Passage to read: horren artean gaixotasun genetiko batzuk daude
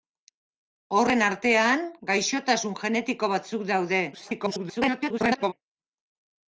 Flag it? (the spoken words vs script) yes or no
yes